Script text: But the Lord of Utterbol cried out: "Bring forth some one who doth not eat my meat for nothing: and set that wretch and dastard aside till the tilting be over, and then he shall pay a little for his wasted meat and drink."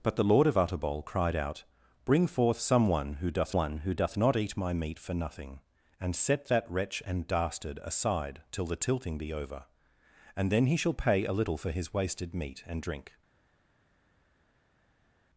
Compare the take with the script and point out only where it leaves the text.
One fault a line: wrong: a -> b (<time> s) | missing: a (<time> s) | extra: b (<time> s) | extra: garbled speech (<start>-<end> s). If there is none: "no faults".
extra: one who doth (3.5 s)